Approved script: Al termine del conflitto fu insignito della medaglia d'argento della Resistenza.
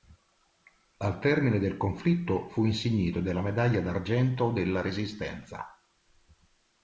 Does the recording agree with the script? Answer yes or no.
yes